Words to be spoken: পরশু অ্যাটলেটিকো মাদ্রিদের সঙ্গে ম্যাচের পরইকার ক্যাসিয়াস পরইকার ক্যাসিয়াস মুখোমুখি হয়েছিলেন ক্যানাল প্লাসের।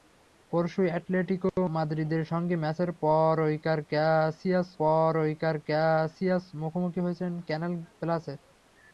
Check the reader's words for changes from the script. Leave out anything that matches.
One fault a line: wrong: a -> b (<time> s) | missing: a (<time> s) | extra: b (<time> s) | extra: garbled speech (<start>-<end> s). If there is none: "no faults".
no faults